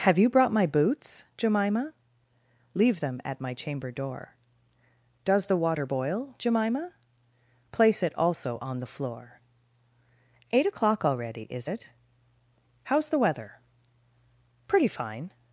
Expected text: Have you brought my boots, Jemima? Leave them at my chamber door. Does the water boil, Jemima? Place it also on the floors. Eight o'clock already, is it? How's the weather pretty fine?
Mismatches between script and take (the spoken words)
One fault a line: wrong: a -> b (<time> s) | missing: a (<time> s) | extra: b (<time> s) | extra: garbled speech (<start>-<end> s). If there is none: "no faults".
wrong: floors -> floor (8.8 s)